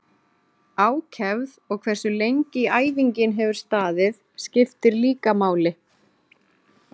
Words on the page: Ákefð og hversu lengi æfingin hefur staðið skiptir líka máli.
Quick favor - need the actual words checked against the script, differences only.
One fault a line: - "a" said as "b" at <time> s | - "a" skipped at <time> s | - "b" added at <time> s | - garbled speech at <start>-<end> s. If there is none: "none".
none